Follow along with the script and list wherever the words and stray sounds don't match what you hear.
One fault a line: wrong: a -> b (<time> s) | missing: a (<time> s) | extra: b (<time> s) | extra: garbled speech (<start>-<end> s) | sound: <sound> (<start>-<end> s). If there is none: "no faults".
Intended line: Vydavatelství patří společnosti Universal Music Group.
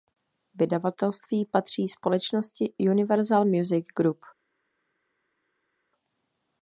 no faults